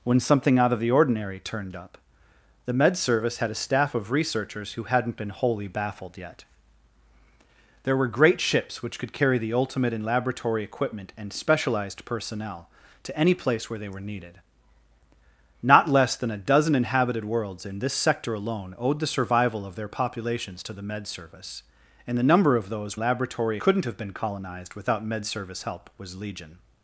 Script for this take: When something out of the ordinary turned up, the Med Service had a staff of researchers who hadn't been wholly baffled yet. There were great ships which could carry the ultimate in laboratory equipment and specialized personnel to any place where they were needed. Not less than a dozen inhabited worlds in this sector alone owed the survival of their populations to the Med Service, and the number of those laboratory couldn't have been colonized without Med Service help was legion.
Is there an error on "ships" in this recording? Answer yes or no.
no